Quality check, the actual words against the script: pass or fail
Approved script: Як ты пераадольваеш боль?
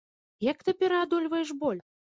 pass